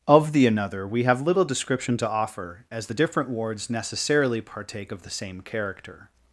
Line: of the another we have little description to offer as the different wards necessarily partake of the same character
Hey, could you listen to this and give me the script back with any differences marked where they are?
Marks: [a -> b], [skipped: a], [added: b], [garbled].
of the another we have little description to offer as the different wards necessarily partake of the same character